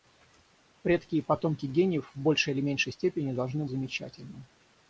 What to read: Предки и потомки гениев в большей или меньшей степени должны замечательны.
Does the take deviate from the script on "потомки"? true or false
false